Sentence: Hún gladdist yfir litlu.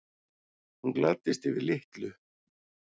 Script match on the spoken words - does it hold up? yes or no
yes